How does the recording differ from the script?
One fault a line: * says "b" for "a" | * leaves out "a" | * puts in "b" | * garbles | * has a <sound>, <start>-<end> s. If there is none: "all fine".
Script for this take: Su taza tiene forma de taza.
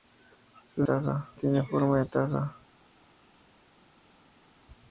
all fine